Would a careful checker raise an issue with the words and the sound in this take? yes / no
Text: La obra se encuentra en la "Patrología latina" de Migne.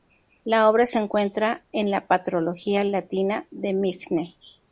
no